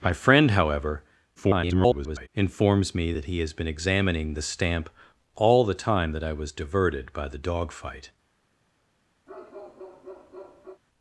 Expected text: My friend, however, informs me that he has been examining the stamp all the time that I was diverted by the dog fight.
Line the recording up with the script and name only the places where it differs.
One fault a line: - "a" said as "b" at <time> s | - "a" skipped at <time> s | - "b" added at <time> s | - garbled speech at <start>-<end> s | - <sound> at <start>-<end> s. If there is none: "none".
- garbled speech at 1.4-2.3 s
- bark at 9.3-10.8 s